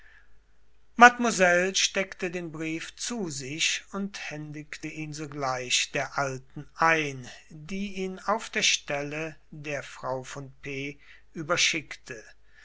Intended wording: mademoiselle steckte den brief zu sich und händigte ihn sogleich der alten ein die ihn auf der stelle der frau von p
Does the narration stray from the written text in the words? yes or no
no